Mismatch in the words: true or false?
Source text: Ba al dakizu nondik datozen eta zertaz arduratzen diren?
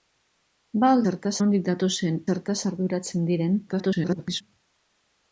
true